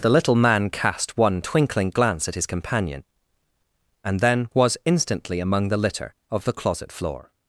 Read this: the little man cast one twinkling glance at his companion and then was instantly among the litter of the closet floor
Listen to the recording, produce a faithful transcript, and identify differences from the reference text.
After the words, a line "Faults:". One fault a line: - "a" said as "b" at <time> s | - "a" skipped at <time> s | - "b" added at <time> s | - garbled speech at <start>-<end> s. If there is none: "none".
the little man cast one twinkling glance at his companion and then was instantly among the litter of the closet floor
Faults:
none